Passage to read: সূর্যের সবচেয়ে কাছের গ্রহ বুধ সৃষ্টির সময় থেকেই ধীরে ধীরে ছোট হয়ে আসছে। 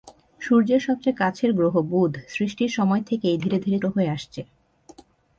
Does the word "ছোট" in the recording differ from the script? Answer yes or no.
yes